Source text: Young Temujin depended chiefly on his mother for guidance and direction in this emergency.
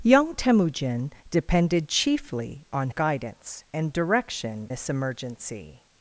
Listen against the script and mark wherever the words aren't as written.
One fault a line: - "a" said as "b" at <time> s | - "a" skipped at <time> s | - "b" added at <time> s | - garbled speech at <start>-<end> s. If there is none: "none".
- "his mother for" skipped at 2.9 s
- "in" skipped at 4.7 s